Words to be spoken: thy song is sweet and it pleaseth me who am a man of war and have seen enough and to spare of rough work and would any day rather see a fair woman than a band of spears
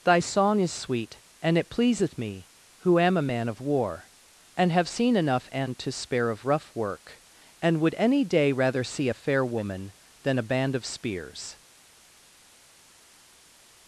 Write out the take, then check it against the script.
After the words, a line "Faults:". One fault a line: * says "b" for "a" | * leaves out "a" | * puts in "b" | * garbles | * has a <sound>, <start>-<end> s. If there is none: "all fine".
thy song is sweet and it pleaseth me who am a man of war and have seen enough and to spare of rough work and would any day rather see a fair woman than a band of spears
Faults:
all fine